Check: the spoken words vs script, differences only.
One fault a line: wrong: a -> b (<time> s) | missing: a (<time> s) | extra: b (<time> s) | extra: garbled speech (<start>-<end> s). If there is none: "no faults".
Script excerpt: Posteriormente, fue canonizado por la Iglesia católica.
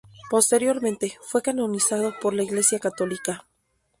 no faults